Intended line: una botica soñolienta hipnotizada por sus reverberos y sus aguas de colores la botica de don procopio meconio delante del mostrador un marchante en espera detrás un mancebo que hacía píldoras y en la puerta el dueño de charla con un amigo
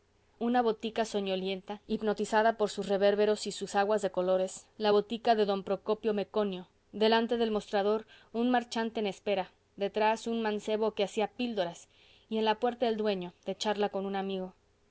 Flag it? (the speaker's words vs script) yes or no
no